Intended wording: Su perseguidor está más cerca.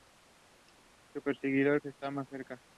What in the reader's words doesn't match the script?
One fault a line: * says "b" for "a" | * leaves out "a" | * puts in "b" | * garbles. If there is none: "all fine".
all fine